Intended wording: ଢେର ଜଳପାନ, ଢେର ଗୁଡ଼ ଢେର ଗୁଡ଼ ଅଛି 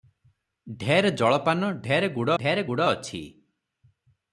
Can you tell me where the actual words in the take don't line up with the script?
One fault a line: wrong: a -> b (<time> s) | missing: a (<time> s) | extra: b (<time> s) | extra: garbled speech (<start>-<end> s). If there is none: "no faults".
no faults